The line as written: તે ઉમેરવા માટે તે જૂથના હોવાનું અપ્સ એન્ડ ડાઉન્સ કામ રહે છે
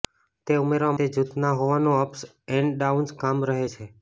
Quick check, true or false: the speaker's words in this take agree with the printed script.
false